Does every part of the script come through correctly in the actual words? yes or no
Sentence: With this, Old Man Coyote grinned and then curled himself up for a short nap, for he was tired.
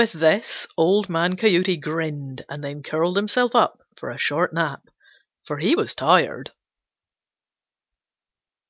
yes